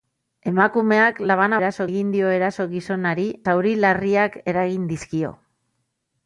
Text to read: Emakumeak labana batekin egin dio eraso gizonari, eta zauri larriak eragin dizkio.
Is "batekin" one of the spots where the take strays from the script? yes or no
yes